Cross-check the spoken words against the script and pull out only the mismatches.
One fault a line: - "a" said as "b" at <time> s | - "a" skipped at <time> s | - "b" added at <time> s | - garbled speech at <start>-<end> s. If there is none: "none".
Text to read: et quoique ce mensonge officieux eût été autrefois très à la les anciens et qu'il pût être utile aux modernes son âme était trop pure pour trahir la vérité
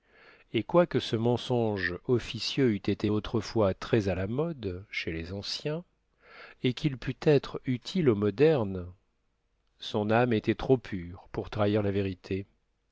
- "mode chez" added at 4.3 s